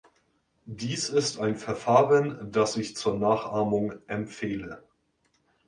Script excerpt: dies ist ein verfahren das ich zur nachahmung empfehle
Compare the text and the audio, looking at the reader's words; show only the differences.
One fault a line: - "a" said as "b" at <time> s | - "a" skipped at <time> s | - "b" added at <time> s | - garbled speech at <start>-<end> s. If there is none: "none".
none